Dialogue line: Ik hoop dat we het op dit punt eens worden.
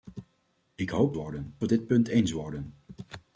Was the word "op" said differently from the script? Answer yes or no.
yes